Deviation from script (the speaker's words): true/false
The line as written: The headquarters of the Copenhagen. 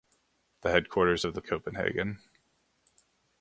false